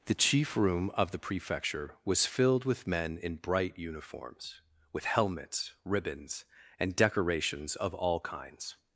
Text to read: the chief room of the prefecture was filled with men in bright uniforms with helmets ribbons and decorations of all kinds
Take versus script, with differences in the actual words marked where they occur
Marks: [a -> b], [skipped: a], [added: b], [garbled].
the chief room of the prefecture was filled with men in bright uniforms with helmets ribbons and decorations of all kinds